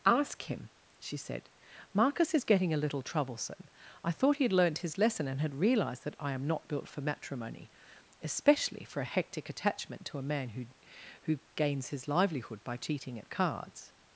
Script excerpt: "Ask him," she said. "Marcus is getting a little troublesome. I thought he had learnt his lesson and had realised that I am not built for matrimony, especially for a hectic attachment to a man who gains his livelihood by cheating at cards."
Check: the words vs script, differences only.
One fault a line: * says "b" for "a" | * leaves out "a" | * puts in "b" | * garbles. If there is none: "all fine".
* puts in "who"